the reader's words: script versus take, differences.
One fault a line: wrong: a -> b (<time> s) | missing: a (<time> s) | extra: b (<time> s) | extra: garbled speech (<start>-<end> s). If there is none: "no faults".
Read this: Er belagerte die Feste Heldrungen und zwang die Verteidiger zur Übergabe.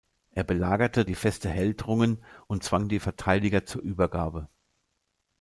no faults